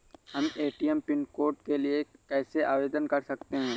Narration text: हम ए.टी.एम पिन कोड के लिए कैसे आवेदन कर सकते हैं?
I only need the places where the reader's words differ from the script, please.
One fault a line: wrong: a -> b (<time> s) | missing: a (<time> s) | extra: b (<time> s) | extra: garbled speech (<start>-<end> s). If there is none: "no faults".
no faults